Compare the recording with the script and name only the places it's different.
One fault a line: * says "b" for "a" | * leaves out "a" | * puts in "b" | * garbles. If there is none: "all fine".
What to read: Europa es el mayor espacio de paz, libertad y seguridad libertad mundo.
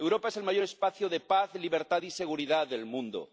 * says "del" for "libertad"